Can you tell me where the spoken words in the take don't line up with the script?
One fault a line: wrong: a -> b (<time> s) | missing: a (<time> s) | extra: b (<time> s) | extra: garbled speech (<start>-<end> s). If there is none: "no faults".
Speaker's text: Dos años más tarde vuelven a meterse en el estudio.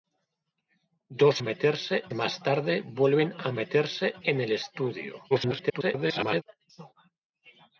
wrong: años -> meterse (1.4 s)
extra: garbled speech (5.3-6.4 s)